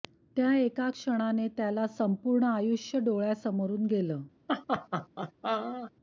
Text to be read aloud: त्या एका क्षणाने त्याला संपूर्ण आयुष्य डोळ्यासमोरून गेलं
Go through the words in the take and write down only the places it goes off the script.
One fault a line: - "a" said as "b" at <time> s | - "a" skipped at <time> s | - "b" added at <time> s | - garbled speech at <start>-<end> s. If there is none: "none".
none